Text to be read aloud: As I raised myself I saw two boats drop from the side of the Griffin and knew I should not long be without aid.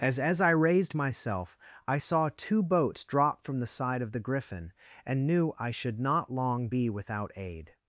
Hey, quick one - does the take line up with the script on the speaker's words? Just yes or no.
no